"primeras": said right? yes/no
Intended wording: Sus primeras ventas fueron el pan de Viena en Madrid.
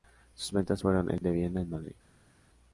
no